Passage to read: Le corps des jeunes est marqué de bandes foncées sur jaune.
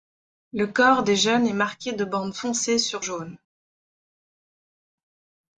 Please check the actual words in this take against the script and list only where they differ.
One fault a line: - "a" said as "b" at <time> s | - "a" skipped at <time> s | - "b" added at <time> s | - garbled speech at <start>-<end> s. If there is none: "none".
none